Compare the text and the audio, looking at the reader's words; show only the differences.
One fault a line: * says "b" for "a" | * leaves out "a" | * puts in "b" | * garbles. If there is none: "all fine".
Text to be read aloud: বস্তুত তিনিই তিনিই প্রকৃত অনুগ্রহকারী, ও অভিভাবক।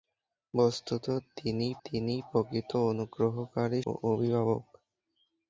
all fine